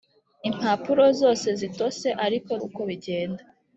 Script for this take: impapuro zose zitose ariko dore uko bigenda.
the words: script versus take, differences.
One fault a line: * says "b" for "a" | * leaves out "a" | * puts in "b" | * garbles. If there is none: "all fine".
* leaves out "dore"